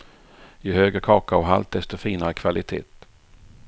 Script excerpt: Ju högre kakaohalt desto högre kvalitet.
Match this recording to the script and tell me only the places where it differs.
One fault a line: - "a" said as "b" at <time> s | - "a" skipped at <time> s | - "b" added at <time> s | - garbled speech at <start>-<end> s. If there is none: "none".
- "högre" said as "finare" at 2.0 s